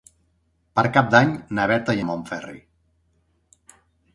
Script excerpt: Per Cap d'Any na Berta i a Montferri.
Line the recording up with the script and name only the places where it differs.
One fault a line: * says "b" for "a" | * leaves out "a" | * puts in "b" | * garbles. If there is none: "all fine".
all fine